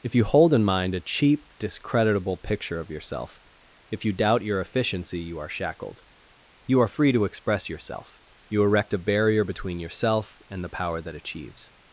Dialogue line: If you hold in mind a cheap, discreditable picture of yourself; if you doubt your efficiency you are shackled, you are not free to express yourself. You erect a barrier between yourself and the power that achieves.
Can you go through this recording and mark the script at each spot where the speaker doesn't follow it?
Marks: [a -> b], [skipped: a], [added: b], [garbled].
If you hold in mind a cheap, discreditable picture of yourself; if you doubt your efficiency you are shackled, you are [skipped: not] free to express yourself. You erect a barrier between yourself and the power that achieves.